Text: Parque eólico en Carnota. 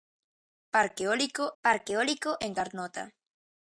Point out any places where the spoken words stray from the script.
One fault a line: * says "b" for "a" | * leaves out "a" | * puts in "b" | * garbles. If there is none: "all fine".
* puts in "parque eólico"